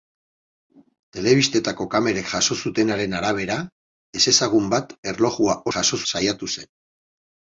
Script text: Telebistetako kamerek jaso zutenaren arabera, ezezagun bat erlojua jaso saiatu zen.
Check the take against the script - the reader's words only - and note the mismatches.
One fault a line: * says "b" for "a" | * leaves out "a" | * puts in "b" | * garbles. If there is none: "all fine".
all fine